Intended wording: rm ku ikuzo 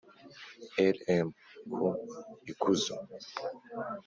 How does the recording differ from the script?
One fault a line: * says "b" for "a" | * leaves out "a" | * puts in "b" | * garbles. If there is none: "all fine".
all fine